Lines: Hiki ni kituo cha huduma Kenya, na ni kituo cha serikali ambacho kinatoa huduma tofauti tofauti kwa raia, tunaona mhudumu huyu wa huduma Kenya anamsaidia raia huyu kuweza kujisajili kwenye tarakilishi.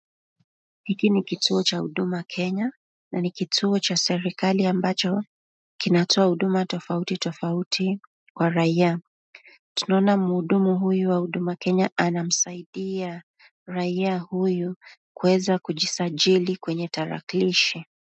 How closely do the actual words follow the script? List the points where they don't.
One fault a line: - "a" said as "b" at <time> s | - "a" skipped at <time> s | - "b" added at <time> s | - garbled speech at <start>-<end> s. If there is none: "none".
none